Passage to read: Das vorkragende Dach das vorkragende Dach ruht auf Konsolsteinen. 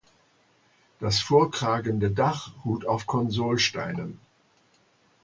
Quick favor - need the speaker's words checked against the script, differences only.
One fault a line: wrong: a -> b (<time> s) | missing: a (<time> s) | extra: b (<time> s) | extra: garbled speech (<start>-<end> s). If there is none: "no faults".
missing: das vorkragende Dach (2.5 s)